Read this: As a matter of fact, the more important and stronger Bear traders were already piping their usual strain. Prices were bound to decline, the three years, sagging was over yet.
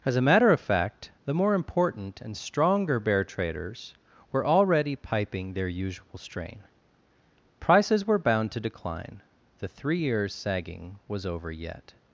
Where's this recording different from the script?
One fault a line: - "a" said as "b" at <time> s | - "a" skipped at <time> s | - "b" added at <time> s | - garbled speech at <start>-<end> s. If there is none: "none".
none